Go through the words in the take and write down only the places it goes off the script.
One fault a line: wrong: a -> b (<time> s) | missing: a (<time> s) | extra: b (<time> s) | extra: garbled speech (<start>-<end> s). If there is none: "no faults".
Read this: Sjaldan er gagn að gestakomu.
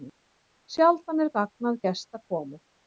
no faults